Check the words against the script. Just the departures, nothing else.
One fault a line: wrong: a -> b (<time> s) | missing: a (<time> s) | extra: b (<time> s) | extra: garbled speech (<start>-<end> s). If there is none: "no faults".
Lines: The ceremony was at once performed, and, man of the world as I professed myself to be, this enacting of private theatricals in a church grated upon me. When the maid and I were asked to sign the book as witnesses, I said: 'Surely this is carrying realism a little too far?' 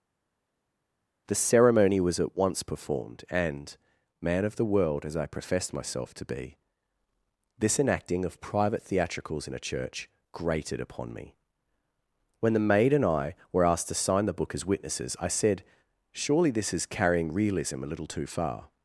no faults